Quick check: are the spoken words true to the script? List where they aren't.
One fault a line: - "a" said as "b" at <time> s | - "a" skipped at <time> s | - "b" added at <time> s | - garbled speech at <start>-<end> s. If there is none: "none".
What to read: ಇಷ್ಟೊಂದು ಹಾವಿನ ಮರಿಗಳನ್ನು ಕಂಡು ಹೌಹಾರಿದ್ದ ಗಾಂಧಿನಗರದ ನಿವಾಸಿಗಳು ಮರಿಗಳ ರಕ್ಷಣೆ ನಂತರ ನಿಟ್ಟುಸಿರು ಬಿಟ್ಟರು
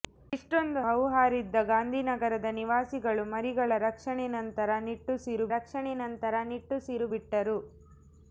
- "ಹಾವಿನ ಮರಿಗಳನ್ನು ಕಂಡು" skipped at 0.8 s
- "ರಕ್ಷಣೆ ನಂತರ ನಿಟ್ಟುಸಿರು" added at 5.5 s